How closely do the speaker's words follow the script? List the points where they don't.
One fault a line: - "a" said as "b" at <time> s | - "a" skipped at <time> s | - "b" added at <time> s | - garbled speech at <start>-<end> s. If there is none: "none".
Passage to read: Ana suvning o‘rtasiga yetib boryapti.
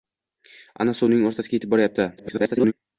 - garbled speech at 2.2-2.7 s